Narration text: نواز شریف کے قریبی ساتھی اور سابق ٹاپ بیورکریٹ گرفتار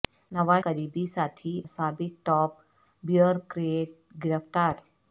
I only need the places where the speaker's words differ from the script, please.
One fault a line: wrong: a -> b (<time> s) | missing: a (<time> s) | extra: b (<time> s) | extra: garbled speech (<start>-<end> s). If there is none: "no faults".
missing: شریف کے (0.6 s)
missing: اور (1.5 s)